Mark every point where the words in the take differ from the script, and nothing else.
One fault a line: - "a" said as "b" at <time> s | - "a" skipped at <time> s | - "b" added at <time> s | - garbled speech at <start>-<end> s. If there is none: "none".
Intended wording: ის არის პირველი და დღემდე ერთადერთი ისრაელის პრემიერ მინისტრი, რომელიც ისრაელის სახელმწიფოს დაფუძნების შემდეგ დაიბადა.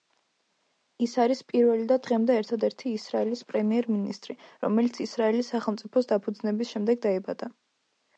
none